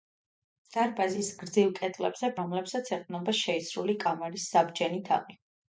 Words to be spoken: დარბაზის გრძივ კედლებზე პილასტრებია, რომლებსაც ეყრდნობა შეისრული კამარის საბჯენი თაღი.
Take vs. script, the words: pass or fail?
fail